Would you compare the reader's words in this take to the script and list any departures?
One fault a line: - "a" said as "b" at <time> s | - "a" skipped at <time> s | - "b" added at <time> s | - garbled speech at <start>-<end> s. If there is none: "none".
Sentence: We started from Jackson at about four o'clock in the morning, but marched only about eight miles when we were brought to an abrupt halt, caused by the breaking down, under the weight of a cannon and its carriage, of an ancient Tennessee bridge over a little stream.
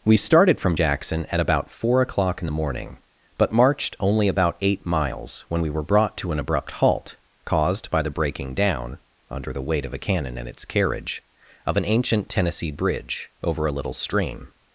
none